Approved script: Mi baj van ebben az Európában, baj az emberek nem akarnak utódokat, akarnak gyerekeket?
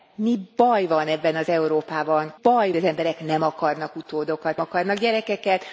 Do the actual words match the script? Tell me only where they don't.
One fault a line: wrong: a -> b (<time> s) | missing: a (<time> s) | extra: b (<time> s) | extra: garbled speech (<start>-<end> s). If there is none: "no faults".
no faults